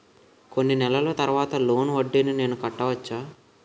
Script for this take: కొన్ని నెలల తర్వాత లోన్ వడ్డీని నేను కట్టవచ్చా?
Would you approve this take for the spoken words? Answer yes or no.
yes